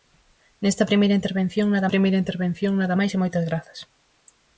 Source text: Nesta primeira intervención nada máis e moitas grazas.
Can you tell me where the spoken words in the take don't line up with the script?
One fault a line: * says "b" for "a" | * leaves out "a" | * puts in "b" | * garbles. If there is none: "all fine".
* puts in "primeira intervención nada"